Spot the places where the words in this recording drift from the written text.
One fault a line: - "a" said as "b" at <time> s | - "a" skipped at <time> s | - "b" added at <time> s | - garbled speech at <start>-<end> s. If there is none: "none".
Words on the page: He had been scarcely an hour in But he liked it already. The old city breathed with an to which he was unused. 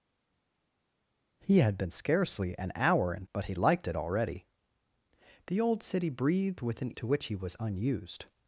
none